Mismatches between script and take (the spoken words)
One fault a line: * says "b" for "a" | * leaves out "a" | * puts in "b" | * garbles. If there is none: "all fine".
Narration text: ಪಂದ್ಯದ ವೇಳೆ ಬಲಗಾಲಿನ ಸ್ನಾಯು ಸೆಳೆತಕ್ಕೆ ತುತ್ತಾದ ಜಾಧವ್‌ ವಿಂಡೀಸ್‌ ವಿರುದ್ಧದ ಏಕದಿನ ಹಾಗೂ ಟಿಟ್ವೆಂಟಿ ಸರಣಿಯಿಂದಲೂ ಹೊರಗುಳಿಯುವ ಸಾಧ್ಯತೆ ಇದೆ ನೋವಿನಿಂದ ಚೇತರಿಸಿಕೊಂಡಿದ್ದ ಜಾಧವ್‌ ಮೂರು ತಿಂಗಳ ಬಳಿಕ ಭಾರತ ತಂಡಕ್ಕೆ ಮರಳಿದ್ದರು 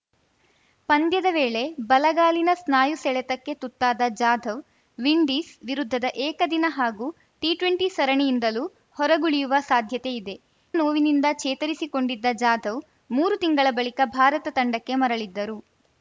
all fine